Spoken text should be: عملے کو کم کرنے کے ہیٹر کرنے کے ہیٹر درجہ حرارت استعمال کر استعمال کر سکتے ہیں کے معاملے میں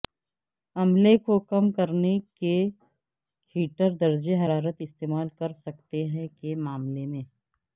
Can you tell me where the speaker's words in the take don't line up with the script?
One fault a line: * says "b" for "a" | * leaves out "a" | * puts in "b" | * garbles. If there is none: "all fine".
* leaves out "کرنے کے ہیٹر"
* leaves out "استعمال کر"